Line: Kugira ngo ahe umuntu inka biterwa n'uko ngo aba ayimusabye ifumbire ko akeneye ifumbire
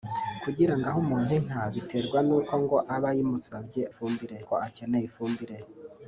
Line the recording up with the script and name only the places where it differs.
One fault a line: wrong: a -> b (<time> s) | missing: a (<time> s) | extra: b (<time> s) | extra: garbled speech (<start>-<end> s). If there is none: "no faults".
no faults